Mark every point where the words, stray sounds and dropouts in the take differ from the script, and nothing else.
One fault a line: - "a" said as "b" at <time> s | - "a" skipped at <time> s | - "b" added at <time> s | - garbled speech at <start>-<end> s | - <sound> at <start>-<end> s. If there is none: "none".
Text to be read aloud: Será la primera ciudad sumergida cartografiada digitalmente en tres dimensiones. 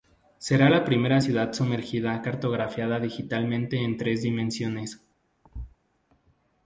- thud at 5.4-5.8 s